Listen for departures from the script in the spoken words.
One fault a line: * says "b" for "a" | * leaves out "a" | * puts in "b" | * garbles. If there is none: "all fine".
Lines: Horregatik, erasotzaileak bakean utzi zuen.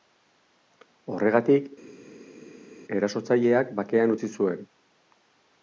all fine